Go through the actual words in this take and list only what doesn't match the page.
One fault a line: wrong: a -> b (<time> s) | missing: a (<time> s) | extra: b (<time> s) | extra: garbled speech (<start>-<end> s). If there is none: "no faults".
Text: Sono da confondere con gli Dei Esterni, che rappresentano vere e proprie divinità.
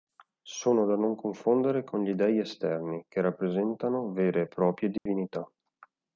extra: non (0.9 s)